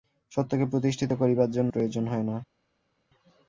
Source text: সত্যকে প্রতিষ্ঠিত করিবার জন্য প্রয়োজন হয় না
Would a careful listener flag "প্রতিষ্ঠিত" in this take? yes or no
no